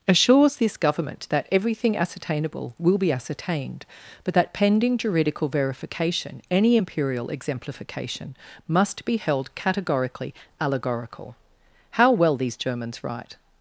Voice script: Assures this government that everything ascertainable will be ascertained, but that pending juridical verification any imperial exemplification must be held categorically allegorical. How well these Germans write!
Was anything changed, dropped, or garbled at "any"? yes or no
no